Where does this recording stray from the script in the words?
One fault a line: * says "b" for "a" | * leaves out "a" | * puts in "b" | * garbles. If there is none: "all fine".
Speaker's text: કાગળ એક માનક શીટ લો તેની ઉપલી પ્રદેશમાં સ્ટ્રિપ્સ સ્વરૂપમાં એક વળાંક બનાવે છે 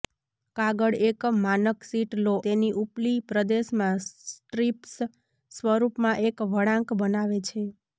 all fine